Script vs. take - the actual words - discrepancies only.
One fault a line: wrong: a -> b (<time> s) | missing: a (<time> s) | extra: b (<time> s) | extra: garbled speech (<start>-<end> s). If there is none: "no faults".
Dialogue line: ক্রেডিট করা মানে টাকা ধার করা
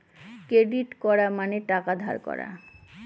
no faults